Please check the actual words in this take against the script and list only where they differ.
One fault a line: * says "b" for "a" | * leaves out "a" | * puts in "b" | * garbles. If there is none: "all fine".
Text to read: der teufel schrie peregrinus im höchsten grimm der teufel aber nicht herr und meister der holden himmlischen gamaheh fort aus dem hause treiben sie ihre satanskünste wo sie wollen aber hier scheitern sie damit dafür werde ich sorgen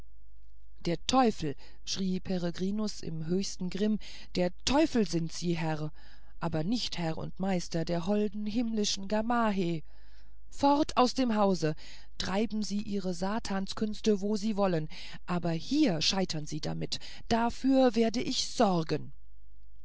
* puts in "sind sie herr"